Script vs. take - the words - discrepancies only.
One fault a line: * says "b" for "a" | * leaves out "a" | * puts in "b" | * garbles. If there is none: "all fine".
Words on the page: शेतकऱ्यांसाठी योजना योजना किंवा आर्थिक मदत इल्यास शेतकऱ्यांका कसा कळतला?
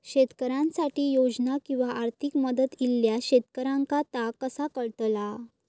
* leaves out "योजना"
* puts in "ता"